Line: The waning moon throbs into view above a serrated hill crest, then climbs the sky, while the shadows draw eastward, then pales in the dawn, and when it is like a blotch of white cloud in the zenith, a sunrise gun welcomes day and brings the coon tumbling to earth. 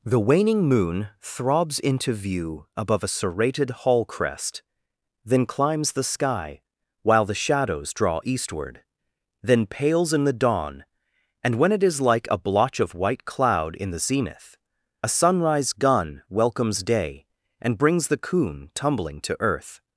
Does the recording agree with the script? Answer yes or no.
no